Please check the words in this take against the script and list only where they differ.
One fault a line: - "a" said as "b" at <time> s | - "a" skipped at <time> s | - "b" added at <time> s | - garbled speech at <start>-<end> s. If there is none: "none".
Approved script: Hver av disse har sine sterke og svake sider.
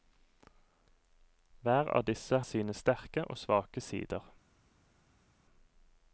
- "har" skipped at 2.4 s